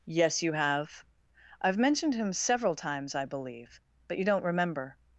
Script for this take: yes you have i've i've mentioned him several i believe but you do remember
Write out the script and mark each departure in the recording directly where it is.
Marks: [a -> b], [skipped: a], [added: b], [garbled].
yes you have i've [skipped: i've] mentioned him several [added: times] i believe but you [do -> don't] remember